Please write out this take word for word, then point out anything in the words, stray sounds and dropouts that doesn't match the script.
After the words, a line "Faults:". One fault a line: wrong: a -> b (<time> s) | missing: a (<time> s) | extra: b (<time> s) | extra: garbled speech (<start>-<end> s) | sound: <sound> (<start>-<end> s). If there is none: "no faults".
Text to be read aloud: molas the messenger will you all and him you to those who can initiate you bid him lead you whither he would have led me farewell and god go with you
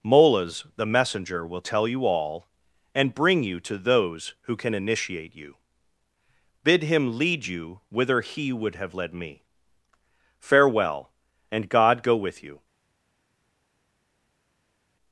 molas the messenger will tell you all and bring you to those who can initiate you bid him lead you whither he would have led me farewell and god go with you
Faults:
extra: tell (1.6 s)
wrong: him -> bring (3.1 s)